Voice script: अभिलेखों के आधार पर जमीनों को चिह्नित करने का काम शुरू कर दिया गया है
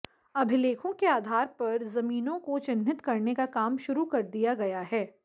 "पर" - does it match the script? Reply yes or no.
yes